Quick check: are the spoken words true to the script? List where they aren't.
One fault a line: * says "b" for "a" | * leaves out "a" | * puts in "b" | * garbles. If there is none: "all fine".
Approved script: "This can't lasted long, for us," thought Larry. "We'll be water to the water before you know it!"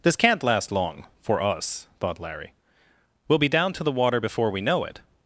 * says "last" for "lasted"
* says "down" for "water"
* says "we" for "you"